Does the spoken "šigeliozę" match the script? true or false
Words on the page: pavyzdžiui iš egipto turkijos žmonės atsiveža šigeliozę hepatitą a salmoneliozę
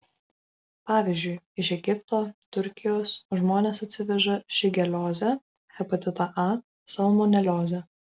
true